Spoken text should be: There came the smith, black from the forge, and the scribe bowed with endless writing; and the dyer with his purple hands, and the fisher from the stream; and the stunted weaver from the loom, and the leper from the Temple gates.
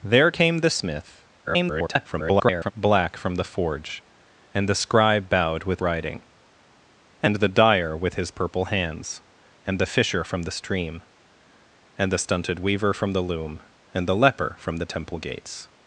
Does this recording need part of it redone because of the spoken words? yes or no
yes